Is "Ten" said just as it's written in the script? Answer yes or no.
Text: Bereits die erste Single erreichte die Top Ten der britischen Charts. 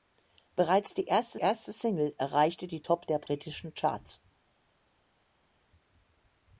no